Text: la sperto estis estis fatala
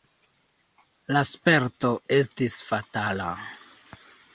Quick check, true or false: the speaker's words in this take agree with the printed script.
false